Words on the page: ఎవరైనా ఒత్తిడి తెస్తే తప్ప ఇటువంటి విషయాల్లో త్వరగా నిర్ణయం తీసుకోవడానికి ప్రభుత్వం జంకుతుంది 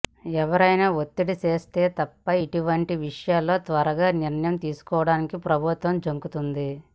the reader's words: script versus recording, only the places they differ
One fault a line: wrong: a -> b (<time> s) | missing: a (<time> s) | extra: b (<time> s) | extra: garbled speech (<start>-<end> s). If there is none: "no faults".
no faults